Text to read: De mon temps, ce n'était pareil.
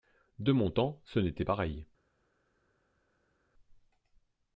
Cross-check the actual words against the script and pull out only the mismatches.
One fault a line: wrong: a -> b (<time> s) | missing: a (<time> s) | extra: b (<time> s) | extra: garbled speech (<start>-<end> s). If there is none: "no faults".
no faults